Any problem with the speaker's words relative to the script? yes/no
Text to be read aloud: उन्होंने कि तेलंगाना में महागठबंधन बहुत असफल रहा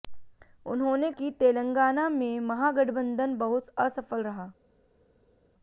no